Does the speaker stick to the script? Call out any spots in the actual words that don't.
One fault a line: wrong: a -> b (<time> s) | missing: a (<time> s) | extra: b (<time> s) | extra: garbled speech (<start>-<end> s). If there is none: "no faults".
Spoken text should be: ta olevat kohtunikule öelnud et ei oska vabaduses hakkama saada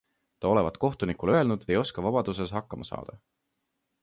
missing: et (1.6 s)